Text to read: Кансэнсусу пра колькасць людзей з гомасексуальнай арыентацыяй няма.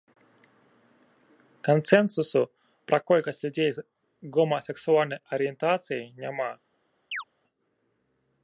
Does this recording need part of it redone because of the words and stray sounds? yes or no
yes